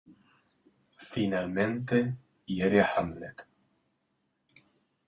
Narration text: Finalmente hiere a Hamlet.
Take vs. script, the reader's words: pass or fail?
pass